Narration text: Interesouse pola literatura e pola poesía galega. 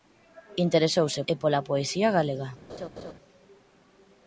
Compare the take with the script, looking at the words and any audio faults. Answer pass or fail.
fail